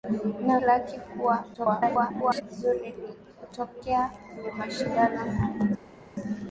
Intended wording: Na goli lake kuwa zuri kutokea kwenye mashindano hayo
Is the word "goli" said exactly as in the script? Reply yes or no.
no